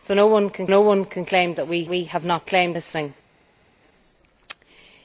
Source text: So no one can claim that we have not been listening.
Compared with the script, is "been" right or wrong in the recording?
wrong